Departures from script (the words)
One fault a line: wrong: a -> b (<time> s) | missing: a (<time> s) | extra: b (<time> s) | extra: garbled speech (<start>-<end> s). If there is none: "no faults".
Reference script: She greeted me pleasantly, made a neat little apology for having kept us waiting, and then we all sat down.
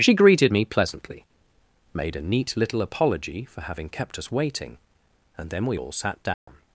no faults